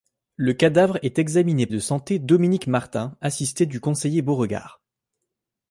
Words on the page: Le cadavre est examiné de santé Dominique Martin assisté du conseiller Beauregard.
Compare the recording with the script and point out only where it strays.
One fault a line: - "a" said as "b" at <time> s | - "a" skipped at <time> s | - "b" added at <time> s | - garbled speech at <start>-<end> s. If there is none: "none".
none